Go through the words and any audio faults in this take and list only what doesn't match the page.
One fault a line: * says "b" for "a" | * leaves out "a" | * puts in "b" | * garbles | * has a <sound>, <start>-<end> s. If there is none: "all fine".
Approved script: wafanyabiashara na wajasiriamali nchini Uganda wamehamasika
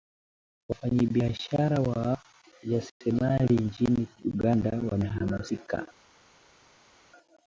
all fine